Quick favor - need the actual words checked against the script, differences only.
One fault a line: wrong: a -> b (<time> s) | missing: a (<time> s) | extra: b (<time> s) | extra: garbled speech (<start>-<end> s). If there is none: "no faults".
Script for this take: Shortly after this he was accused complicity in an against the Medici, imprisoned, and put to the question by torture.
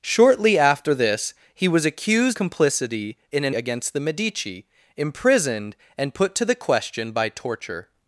no faults